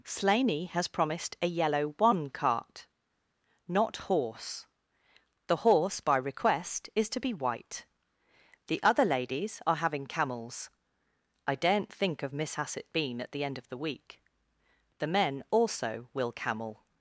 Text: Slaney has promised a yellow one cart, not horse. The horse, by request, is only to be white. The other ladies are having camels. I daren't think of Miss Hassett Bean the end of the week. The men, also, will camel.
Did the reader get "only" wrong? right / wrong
wrong